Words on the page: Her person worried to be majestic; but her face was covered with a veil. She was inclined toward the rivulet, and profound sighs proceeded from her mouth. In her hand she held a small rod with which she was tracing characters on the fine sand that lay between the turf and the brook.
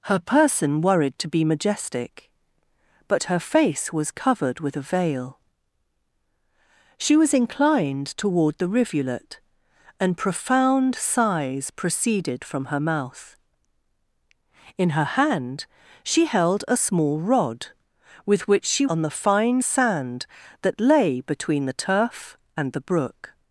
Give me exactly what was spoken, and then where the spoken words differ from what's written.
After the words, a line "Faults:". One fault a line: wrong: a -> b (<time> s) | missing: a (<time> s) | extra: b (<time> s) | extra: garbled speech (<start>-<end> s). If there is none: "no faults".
Her person worried to be majestic; but her face was covered with a veil. She was inclined toward the rivulet, and profound sighs proceeded from her mouth. In her hand she held a small rod with which she on the fine sand that lay between the turf and the brook.
Faults:
missing: was tracing characters (18.9 s)